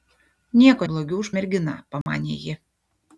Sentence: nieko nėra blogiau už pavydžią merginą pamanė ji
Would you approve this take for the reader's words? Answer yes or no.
no